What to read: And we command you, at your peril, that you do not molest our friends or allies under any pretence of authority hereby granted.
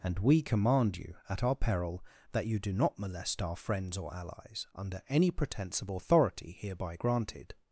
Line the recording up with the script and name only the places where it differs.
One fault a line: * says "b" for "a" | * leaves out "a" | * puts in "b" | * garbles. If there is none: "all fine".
* says "our" for "your"